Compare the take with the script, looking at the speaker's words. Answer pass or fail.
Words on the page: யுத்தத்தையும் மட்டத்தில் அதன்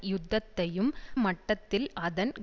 pass